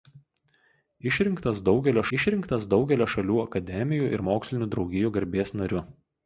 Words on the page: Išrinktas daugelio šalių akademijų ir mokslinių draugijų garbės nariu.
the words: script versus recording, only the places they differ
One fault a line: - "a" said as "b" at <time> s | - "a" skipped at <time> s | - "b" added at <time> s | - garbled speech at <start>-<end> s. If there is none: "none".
- "išrinktas daugelio" added at 2.2 s